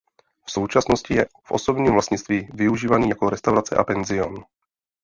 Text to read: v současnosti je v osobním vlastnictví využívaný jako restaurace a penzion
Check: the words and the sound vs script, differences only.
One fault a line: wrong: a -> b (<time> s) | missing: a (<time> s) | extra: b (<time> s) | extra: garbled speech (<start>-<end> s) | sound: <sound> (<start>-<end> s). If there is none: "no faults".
no faults